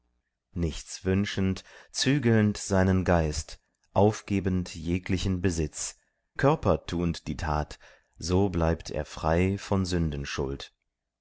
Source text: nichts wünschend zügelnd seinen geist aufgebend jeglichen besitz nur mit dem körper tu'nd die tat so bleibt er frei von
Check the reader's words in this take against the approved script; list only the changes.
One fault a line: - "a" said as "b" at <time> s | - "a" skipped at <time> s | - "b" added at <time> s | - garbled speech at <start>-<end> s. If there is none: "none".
- "nur mit dem" skipped at 6.0 s